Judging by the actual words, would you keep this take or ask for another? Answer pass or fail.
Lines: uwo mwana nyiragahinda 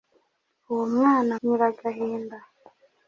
pass